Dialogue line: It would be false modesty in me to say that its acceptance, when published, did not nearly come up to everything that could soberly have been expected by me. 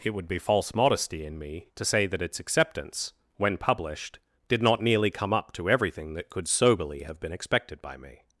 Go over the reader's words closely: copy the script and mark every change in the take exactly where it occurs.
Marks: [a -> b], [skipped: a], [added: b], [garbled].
It would be false modesty in me to say that its acceptance, when published, did not nearly come up to everything that could soberly have been expected by me.